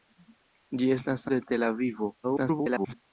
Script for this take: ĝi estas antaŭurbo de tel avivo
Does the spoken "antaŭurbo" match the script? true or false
false